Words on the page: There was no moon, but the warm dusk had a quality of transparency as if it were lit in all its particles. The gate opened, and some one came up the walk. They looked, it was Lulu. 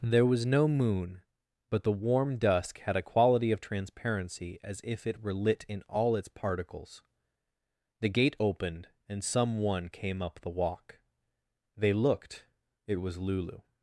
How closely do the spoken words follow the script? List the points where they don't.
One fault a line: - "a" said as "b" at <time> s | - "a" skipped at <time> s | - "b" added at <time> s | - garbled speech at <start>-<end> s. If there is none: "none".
none